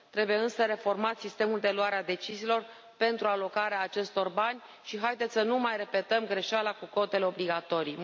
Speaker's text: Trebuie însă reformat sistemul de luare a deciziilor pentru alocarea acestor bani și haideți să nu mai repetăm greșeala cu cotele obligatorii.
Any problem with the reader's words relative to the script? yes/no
no